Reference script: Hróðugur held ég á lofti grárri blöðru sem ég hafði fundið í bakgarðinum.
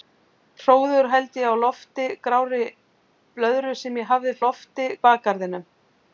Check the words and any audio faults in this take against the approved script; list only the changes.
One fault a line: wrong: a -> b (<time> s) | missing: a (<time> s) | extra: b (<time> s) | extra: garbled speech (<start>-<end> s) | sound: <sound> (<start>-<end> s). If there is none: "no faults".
wrong: fundið -> lofti (4.5 s)